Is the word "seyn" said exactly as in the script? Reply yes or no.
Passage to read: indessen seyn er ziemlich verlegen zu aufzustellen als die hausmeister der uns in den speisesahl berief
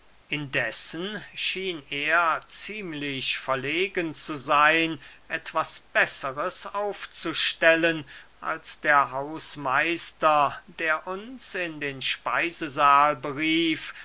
no